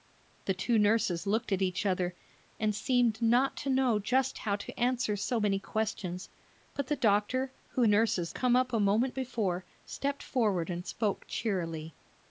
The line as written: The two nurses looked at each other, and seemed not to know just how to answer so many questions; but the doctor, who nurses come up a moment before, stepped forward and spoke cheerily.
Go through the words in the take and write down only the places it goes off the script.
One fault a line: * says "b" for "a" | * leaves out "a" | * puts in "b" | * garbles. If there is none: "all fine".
all fine